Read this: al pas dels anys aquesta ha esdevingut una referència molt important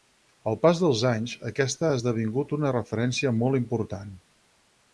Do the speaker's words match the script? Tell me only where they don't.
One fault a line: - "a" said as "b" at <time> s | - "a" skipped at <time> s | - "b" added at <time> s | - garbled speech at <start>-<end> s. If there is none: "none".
none